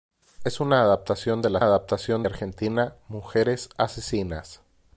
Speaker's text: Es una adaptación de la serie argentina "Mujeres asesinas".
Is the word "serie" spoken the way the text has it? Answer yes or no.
no